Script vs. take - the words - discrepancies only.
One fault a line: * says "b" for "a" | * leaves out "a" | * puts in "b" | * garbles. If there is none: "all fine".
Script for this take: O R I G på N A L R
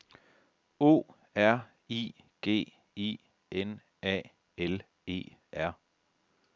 * says "I" for "på"
* puts in "E"